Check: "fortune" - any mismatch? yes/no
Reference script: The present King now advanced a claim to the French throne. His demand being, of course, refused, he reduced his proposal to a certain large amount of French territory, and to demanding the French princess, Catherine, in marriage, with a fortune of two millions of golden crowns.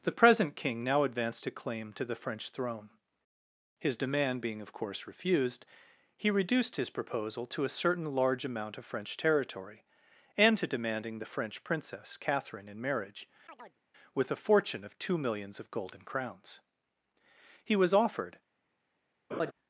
no